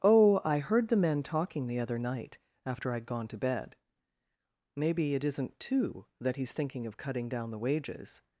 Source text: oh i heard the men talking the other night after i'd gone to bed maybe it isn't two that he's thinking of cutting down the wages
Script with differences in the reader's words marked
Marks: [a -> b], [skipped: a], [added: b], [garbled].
oh i heard the men talking the other night after i'd gone to bed maybe it isn't two that he's thinking of cutting down the wages